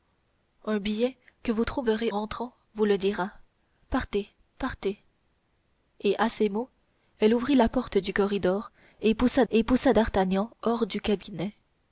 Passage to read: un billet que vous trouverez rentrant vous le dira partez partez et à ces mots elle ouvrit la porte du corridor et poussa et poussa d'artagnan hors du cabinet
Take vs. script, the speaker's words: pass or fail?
pass